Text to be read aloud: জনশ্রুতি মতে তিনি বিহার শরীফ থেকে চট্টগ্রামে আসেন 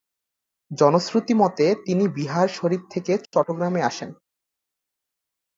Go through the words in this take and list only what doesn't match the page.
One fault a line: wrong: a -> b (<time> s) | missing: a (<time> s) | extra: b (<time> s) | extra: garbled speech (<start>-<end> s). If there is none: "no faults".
no faults